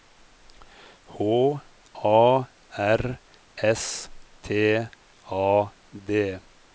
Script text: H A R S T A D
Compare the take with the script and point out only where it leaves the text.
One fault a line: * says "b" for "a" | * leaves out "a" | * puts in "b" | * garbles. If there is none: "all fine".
all fine